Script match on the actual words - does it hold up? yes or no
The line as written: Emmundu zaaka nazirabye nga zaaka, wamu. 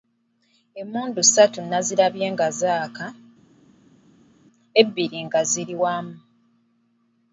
no